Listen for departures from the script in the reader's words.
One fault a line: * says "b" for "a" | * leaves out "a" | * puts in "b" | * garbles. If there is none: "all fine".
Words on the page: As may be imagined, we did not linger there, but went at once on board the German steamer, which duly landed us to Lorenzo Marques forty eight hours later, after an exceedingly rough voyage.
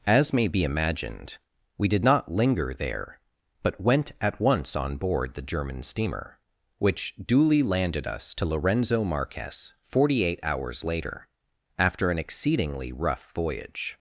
all fine